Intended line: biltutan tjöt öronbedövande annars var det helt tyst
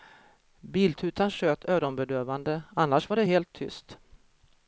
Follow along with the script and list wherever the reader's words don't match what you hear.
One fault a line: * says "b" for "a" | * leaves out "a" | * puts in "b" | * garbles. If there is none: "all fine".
all fine